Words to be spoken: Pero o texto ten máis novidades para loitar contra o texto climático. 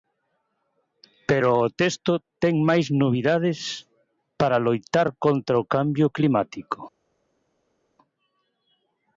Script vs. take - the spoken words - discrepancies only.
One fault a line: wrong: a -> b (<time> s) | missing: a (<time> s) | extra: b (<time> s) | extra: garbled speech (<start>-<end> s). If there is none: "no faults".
wrong: texto -> cambio (5.7 s)